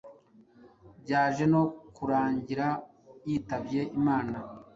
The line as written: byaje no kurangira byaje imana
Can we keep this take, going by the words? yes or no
no